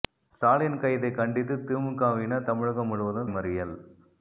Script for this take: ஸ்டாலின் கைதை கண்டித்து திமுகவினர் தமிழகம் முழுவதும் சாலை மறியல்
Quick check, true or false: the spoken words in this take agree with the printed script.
false